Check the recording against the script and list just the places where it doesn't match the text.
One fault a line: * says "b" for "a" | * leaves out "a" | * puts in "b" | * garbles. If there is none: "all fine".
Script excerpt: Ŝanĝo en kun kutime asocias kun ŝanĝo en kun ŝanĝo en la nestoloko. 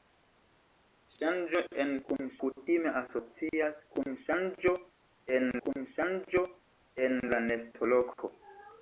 all fine